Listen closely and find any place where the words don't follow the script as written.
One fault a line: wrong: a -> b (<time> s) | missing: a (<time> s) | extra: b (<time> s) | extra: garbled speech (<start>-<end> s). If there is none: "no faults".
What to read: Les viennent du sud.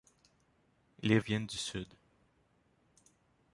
no faults